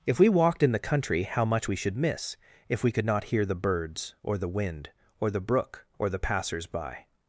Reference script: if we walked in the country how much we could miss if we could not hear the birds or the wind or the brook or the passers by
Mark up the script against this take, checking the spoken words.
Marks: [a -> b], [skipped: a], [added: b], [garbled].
if we walked in the country how much we [could -> should] miss if we could not hear the birds or the wind or the brook or the passers by